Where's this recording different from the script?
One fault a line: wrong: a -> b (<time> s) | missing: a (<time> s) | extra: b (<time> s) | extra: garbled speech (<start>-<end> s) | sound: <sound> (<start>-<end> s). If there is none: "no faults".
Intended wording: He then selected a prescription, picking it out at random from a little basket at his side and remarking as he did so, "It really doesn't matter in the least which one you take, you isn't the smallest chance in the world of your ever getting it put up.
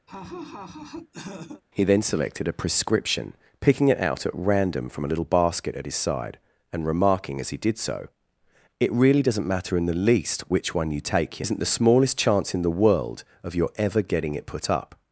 sound: laugh (0.1-1.6 s)